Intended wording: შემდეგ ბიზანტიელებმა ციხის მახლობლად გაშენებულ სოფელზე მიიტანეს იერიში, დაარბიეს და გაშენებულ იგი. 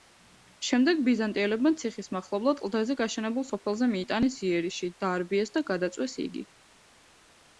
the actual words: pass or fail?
fail